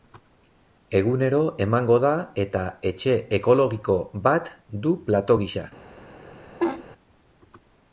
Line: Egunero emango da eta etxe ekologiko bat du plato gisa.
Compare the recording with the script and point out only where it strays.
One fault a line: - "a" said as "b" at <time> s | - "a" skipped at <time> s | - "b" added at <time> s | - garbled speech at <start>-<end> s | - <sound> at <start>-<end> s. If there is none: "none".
- laugh at 6.6-6.8 s